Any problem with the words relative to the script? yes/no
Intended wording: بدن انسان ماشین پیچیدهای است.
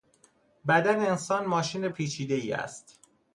no